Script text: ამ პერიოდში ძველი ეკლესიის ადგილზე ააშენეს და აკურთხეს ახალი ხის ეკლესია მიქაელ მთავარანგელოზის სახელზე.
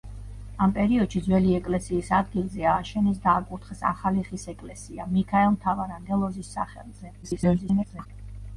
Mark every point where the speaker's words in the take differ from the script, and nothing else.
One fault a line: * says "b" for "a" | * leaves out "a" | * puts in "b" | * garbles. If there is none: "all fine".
* garbles